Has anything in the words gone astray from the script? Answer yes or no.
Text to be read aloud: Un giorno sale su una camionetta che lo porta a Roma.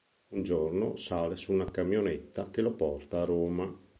no